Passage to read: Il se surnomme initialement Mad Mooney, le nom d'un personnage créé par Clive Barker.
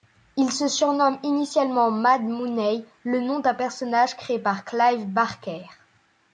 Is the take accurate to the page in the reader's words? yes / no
yes